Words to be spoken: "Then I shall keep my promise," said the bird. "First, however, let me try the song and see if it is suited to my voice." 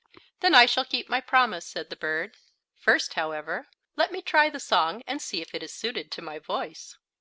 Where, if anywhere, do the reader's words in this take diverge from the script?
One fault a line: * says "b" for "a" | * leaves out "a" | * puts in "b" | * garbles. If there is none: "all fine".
all fine